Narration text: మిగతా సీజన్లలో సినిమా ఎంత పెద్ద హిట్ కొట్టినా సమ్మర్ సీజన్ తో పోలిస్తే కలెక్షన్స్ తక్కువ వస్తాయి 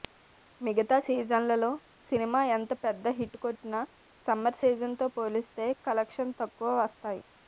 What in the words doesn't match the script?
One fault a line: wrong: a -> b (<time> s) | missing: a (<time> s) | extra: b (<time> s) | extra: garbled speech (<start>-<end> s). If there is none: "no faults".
no faults